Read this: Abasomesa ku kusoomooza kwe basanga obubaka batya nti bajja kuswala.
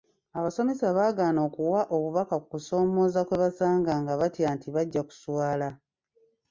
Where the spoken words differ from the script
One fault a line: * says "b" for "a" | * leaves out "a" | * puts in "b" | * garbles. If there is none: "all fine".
* puts in "baagaana okuwa obubaka"
* says "nga" for "obubaka"